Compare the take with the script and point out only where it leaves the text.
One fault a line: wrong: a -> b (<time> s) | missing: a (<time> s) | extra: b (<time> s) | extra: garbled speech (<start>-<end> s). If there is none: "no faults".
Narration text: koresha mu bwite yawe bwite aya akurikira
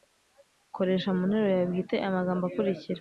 wrong: bwite -> nteruro (1.3 s)
extra: magambo (2.2 s)